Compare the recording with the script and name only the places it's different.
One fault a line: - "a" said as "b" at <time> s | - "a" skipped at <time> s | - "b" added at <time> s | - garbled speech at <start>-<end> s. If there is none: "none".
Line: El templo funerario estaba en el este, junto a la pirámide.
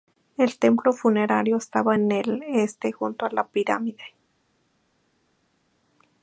none